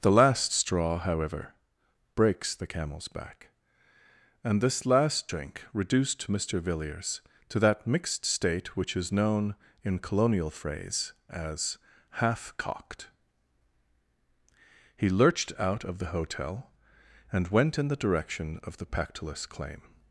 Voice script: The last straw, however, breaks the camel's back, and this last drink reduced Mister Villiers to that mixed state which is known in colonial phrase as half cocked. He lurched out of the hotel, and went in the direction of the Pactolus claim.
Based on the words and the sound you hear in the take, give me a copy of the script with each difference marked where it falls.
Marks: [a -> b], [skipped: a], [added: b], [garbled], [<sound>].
The last straw, however, breaks the camel's back, and this last drink reduced Mister Villiers to that mixed state which is known in colonial phrase as half cocked. He lurched out of the hotel, and went in the direction of the Pactolus claim.